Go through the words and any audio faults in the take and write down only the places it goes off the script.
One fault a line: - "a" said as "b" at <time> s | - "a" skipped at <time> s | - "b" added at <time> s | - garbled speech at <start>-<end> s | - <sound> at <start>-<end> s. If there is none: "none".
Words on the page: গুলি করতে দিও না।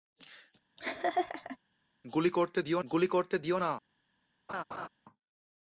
- laugh at 0.8-1.6 s
- "গুলি করতে দিও" added at 2.9 s
- laugh at 4.5-4.9 s